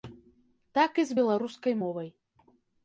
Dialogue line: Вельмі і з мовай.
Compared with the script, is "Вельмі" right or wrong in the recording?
wrong